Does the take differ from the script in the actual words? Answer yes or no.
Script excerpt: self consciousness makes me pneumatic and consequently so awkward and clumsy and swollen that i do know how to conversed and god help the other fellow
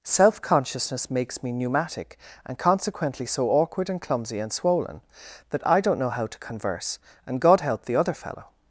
yes